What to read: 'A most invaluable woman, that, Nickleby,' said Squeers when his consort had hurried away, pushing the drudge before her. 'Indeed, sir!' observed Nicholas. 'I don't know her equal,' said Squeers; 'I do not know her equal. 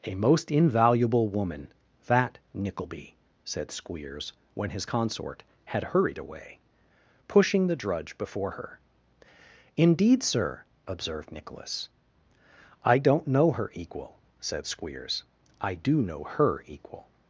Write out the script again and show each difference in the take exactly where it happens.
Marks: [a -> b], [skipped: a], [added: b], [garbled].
'A most invaluable woman, that, Nickleby,' said Squeers when his consort had hurried away, pushing the drudge before her. 'Indeed, sir!' observed Nicholas. 'I don't know her equal,' said Squeers; 'I do [skipped: not] know her equal.